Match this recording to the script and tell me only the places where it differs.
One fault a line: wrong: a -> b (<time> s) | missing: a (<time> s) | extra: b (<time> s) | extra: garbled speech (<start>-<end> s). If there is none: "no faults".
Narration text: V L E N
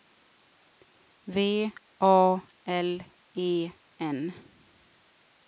extra: A (2.0 s)